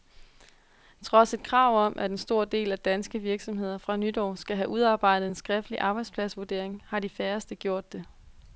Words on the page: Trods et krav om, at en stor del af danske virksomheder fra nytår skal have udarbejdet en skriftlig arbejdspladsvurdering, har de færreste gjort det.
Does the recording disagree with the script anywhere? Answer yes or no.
no